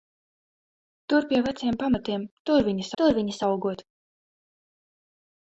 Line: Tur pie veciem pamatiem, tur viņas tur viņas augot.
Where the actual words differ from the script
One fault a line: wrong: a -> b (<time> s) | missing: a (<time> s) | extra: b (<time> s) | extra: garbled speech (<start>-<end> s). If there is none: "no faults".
no faults